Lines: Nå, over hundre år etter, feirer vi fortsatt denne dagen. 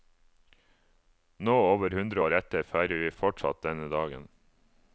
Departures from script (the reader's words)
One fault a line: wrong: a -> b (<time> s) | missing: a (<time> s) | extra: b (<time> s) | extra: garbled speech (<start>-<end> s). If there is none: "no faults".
no faults